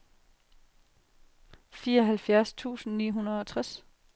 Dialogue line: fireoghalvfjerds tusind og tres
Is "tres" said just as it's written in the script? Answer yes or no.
yes